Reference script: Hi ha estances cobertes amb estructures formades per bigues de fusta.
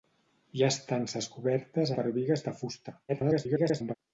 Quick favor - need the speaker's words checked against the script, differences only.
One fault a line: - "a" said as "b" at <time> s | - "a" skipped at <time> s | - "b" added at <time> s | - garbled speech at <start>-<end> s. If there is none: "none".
- "amb estructures formades" skipped at 1.9 s
- garbled speech at 3.1-3.9 s